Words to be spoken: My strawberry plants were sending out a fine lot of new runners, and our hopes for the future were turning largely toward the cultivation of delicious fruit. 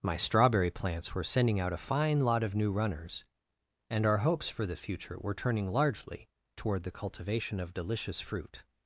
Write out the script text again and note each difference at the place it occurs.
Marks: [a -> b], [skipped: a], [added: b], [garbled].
My strawberry plants were sending out a fine lot of new runners, and our hopes for the future were turning largely toward the cultivation of delicious fruit.